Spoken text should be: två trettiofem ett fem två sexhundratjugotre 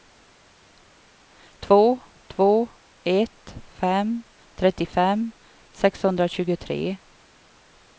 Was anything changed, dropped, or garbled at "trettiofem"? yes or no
yes